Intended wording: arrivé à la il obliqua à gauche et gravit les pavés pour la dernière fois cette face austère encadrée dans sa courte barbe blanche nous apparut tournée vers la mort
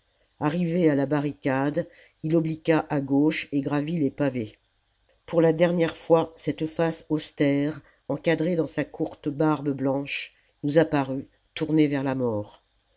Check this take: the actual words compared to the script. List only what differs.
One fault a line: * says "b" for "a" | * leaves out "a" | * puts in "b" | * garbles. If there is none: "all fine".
* puts in "barricade"